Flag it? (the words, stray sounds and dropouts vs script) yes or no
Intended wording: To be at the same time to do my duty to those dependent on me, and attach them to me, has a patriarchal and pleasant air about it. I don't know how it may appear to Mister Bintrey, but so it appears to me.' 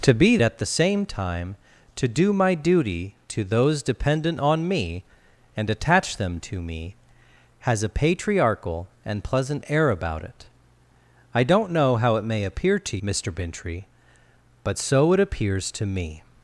no